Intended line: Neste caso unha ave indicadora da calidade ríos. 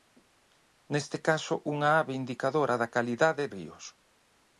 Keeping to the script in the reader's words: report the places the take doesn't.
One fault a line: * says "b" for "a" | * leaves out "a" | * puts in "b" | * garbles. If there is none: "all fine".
all fine